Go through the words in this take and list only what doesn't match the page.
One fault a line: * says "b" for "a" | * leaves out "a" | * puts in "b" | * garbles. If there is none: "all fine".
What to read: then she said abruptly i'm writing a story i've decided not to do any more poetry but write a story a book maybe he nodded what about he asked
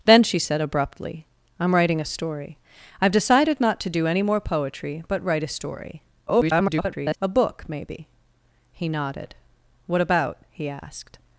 * garbles